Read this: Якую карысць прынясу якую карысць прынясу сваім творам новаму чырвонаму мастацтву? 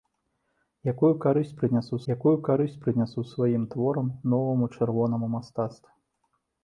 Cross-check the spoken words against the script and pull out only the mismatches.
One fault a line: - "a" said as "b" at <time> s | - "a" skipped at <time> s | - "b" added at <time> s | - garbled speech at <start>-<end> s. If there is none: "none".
none